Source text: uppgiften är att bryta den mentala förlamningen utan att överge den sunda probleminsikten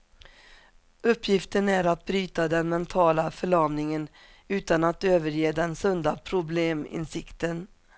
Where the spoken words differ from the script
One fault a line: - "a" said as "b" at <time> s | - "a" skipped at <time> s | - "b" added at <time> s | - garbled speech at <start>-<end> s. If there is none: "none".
none